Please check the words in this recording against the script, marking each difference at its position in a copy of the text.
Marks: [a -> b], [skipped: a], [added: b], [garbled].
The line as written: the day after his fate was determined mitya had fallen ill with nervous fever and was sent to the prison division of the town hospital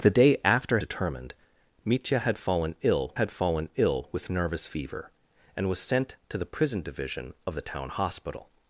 the day after [his fate was determined mitya -> determined mitya had fallen ill] had fallen ill with nervous fever and was sent to the prison division of the town hospital